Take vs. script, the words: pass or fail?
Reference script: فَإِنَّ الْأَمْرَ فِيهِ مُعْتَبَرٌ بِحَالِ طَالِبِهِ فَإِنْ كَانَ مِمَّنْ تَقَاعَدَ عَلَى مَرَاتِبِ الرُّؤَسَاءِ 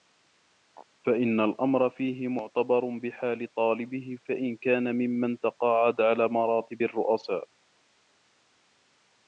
pass